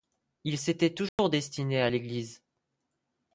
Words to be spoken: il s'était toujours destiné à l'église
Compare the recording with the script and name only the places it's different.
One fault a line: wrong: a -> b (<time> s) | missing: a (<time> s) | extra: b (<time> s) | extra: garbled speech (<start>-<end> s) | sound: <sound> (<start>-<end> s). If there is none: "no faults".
sound: dropout (1.1-1.2 s)